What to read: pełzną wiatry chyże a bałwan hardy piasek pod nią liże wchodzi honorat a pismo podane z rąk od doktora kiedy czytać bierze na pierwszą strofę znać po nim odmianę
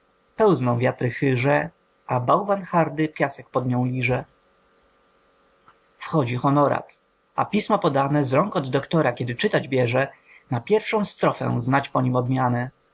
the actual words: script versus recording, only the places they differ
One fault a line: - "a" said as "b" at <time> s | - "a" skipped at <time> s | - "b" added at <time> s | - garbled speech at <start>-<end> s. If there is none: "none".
none